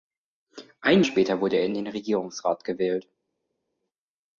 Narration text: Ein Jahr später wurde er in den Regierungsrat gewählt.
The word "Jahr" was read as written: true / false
false